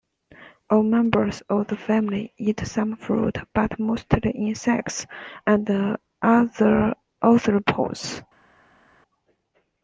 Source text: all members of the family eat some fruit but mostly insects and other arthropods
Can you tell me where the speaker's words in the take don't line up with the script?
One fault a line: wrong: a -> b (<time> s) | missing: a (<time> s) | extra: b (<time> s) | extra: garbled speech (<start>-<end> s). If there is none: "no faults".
no faults